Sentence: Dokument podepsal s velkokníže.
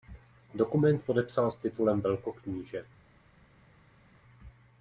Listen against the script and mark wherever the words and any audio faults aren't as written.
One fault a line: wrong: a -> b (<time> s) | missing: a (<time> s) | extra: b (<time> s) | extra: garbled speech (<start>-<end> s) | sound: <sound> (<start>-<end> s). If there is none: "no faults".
extra: titulem (1.6 s)